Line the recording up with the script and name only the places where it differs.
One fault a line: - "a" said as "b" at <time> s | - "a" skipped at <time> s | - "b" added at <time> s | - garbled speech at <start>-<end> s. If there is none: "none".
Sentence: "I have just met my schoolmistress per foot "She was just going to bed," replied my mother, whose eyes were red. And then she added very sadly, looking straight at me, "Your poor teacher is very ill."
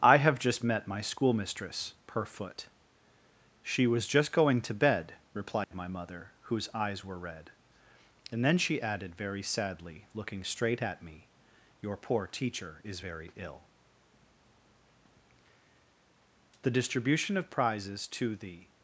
- "THE DISTRIBUTION OF PRIZES TO THE" added at 16.6 s